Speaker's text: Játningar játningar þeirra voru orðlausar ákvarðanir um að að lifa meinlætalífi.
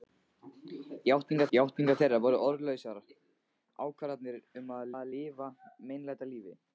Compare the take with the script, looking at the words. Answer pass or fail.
pass